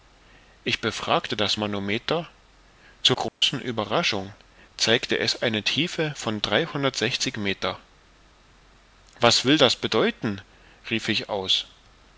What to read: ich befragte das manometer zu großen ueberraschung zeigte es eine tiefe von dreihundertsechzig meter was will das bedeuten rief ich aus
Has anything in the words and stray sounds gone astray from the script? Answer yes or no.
yes